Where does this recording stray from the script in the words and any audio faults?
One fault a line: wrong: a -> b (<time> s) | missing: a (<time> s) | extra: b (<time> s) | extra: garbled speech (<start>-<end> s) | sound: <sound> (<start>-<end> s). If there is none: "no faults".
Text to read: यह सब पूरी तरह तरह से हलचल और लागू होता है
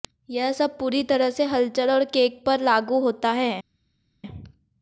missing: तरह (1.3 s)
extra: केक पर (2.0 s)